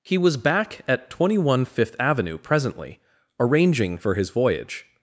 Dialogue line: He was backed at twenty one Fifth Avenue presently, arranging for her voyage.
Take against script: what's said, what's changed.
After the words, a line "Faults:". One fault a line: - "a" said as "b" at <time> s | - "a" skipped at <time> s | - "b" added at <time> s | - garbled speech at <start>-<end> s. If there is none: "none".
He was back at twenty one Fifth Avenue presently, arranging for his voyage.
Faults:
- "backed" said as "back" at 0.3 s
- "her" said as "his" at 4.1 s